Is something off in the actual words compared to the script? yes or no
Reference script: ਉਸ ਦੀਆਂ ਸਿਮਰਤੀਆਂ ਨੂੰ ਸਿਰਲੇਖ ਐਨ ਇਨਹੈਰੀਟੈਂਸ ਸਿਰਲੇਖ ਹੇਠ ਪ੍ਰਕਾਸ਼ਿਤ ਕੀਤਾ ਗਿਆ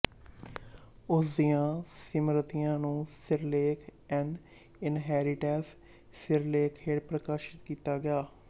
no